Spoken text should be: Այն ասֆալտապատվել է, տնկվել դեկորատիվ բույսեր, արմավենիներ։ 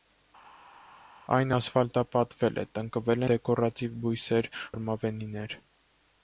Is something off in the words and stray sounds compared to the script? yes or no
no